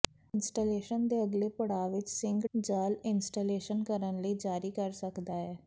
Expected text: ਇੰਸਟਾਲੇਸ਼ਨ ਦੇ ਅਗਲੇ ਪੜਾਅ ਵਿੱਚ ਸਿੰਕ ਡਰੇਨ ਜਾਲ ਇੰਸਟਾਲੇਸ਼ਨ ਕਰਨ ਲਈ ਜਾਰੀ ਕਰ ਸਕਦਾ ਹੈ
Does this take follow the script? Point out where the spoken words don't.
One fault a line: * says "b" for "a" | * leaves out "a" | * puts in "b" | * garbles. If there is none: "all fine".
* leaves out "ਡਰੇਨ"